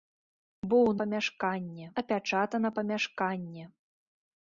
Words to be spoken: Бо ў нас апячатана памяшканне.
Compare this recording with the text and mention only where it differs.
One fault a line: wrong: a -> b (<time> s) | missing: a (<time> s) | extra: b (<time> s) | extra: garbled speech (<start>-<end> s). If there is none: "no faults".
wrong: нас -> памяшканне (1.0 s)